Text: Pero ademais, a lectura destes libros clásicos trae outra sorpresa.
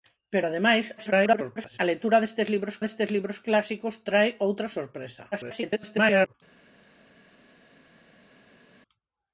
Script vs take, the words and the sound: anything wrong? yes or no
yes